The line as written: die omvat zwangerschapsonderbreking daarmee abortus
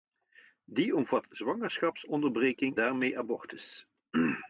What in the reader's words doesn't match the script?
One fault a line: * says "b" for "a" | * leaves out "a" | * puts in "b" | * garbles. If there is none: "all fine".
all fine